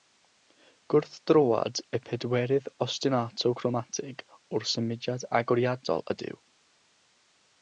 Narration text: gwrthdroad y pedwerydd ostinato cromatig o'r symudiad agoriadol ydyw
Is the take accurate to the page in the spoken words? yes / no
yes